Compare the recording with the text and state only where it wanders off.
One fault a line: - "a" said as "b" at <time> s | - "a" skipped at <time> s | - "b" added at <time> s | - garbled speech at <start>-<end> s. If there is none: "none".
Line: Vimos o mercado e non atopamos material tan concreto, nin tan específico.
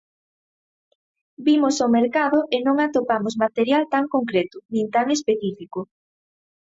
none